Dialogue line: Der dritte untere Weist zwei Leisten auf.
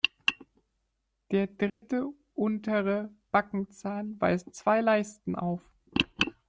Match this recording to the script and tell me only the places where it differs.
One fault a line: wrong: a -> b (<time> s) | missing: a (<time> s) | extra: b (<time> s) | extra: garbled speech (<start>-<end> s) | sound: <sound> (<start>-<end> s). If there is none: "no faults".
sound: dropout (1.7-1.8 s)
extra: Backenzahn (3.3 s)